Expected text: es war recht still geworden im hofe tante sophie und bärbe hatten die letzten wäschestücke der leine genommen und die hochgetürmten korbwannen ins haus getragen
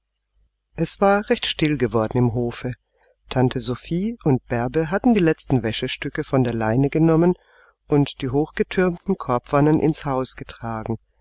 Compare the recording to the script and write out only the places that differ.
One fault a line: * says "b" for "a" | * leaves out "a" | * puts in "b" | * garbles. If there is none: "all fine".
* puts in "von"